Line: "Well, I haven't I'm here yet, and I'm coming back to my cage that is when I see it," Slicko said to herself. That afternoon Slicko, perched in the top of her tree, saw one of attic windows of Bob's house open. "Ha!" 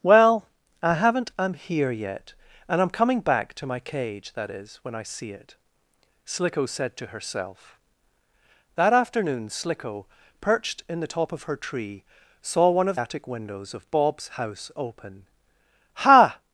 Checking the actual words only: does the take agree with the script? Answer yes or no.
yes